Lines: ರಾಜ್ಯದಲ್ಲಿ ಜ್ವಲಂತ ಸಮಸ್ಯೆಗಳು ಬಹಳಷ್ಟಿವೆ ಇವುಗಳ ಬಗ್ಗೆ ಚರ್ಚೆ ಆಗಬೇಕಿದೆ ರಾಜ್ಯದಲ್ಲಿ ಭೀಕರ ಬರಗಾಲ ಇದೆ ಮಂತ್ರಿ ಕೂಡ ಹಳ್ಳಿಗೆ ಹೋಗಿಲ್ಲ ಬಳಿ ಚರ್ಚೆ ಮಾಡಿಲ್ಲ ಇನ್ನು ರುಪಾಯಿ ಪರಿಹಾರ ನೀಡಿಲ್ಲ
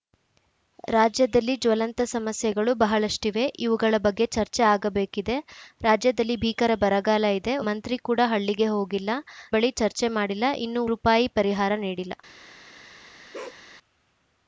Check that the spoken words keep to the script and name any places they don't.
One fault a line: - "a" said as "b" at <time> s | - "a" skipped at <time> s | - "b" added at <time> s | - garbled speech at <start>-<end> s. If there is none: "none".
none